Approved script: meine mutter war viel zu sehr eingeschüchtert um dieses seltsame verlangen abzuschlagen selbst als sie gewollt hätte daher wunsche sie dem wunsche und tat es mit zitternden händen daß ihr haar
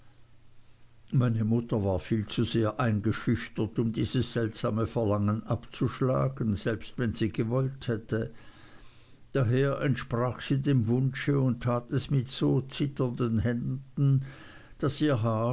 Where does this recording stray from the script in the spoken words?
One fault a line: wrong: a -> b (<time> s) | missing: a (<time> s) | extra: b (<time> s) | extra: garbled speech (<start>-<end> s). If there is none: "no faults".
wrong: als -> wenn (7.0 s)
wrong: wunsche -> entsprach (9.8 s)
extra: so (12.3 s)